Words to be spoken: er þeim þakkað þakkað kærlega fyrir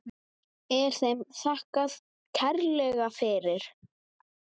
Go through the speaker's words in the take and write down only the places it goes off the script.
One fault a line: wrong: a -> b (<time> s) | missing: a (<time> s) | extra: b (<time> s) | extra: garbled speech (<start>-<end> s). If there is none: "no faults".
missing: þakkað (2.0 s)